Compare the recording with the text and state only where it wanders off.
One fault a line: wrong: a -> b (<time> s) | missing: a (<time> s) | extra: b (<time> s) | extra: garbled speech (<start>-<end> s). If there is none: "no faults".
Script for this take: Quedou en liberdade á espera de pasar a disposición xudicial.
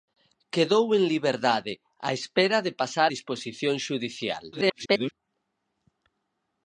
missing: a (3.1 s)
extra: garbled speech (4.5-5.1 s)